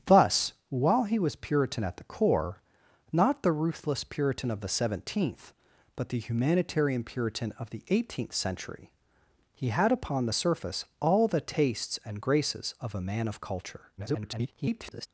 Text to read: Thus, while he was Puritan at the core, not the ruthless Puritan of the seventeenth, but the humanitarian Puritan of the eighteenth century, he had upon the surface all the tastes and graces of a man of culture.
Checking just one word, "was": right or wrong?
right